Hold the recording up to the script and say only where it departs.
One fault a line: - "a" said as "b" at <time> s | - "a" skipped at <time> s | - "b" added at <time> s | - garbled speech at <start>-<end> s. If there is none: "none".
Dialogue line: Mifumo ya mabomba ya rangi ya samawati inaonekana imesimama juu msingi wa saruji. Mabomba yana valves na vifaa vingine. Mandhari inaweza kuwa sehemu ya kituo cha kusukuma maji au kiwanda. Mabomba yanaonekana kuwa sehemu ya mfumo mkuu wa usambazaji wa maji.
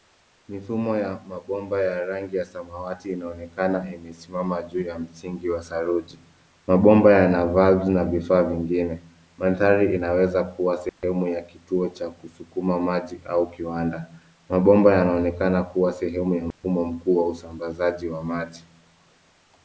- "ya" added at 4.8 s